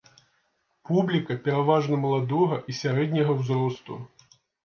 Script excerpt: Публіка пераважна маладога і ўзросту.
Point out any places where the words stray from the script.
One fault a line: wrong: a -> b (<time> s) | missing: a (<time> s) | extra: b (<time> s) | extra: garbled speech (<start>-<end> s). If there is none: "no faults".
extra: сярэдняга (2.8 s)